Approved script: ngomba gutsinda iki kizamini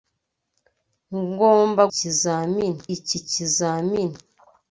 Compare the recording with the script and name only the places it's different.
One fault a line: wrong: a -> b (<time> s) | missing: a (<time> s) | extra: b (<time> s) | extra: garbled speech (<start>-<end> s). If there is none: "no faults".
wrong: gutsinda -> kizamini (1.9 s)